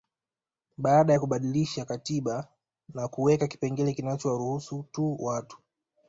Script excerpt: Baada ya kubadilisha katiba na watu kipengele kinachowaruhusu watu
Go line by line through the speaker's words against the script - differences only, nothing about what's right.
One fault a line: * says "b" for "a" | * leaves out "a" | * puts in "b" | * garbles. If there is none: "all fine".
* says "kuweka" for "watu"
* puts in "tu"